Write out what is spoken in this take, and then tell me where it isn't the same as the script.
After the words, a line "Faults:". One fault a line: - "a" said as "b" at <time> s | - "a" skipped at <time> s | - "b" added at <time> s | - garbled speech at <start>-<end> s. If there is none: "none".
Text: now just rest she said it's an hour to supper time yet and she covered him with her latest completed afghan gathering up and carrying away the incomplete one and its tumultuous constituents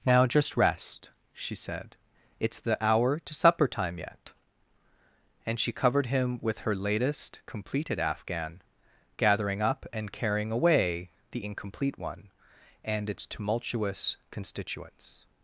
now just rest she said it's the hour to supper time yet and she covered him with her latest completed afghan gathering up and carrying away the incomplete one and its tumultuous constituents
Faults:
- "an" said as "the" at 2.6 s